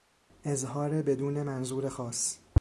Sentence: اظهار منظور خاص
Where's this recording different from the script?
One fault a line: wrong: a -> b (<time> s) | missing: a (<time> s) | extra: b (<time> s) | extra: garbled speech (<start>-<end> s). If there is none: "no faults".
extra: بدون (1.0 s)